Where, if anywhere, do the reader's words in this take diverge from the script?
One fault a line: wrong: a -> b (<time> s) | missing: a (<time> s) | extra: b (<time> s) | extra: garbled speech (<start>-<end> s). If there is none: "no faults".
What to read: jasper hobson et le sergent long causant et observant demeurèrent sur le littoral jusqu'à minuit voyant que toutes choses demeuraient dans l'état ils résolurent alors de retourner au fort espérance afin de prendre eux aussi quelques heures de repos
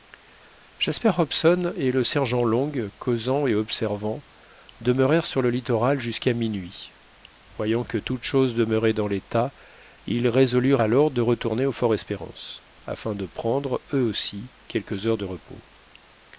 no faults